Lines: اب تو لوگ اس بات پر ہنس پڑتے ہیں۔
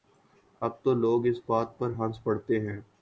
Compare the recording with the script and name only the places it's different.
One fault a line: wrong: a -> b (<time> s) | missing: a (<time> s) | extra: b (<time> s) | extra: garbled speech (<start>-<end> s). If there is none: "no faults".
no faults